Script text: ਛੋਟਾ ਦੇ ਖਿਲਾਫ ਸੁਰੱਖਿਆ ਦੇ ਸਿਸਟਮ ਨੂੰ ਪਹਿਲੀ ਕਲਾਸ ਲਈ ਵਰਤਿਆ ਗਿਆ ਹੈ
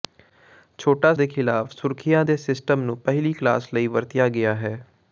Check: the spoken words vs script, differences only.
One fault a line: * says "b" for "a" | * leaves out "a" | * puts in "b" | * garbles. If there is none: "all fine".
all fine